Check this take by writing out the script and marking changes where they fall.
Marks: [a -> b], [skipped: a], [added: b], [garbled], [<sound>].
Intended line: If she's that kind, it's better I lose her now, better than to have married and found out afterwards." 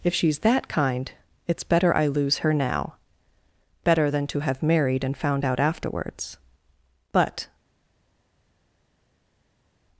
If she's that kind, it's better I lose her now, better than to have married and found out afterwards." [added: But]